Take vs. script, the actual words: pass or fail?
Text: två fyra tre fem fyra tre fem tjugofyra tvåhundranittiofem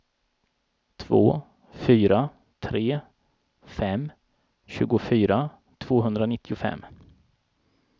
fail